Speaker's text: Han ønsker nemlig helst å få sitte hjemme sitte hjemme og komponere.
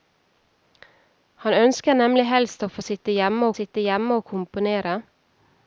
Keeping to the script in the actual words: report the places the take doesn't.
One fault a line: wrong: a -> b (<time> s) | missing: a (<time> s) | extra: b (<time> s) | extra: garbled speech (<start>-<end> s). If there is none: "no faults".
no faults